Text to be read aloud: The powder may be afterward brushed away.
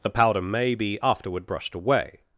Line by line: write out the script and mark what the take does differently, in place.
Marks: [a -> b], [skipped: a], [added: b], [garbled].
The powder may be afterward brushed away.